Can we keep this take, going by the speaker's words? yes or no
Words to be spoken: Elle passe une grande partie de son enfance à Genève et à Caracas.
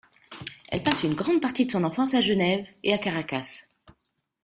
yes